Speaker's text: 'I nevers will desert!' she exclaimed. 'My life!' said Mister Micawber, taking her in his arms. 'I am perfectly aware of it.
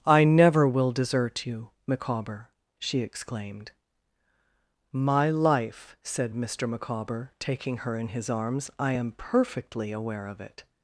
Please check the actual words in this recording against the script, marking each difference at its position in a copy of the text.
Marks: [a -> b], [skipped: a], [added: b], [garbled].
'I [nevers -> never] will desert!' [added: you Micawber] she exclaimed. 'My life!' said Mister Micawber, taking her in his arms. 'I am perfectly aware of it.